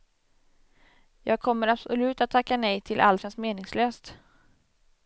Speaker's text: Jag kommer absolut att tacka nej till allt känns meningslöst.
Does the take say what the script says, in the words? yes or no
yes